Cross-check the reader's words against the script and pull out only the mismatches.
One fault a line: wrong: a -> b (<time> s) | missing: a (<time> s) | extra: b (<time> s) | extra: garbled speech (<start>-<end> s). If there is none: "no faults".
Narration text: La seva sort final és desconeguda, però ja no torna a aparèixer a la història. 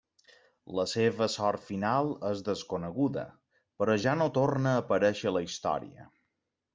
no faults